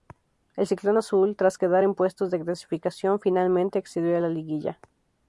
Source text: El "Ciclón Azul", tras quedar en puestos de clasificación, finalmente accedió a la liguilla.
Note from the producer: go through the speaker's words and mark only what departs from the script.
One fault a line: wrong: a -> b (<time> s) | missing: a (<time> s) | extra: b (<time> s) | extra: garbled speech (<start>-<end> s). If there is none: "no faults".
no faults